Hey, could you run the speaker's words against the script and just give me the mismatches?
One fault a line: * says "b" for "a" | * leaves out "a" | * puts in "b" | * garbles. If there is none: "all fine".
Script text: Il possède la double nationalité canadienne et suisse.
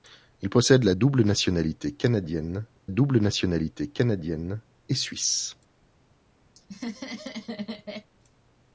* puts in "double nationalité canadienne"